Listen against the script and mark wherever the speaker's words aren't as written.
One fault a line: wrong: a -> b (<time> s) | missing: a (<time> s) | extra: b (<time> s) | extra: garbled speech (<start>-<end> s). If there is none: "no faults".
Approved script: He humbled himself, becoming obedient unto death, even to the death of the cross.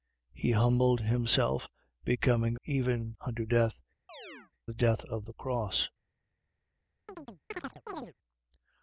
wrong: obedient -> even (2.7 s)
missing: even to (3.8 s)